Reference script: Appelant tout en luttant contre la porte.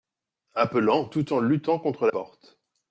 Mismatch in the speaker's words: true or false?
true